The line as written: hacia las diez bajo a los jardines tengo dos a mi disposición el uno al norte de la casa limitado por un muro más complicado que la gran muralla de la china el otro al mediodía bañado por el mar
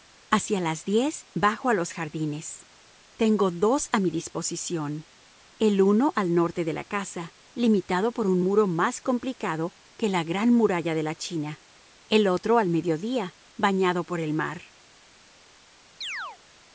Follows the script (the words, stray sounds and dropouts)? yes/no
no